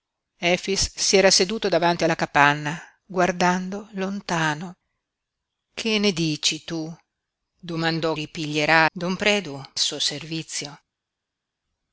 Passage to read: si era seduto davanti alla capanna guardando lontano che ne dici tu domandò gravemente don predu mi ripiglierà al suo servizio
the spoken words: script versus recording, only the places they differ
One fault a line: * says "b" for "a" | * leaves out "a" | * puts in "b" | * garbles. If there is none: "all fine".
* says "ripiglierà" for "gravemente"
* leaves out "mi ripiglierà al"